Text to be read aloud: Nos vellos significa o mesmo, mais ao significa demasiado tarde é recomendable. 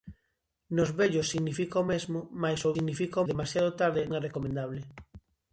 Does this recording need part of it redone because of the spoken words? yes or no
no